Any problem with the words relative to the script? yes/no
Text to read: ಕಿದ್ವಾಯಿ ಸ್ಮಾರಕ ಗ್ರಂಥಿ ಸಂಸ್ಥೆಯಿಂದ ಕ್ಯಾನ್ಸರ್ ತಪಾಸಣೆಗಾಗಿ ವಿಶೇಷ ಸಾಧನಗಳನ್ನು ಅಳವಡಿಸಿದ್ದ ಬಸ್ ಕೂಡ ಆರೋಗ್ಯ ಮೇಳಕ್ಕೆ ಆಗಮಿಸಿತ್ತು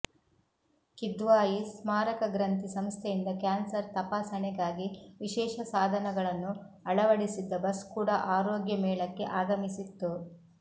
no